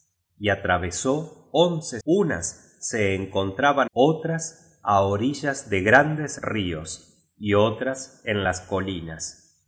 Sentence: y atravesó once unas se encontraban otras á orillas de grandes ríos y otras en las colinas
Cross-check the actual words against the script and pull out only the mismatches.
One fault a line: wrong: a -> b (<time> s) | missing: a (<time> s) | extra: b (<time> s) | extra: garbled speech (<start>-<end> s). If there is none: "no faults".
no faults